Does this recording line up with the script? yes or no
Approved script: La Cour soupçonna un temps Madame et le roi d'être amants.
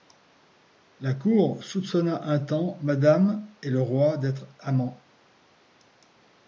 yes